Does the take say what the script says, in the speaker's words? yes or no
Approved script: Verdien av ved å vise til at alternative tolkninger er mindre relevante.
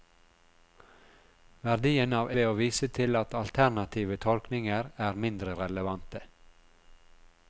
yes